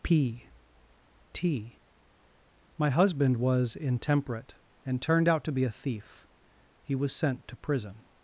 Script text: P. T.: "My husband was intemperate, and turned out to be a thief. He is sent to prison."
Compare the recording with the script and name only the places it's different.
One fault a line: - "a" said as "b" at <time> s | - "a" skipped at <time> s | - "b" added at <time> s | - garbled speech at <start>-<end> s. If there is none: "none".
- "is" said as "was" at 7.0 s